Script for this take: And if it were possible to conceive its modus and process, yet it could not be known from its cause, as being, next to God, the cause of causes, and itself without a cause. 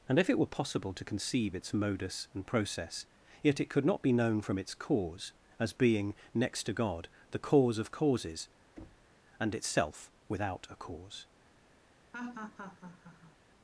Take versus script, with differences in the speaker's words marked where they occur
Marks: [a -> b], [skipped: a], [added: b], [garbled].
And if it were possible to conceive its modus and process, yet it could not be known from its cause, as being, next to God, the cause of causes, and itself without a cause.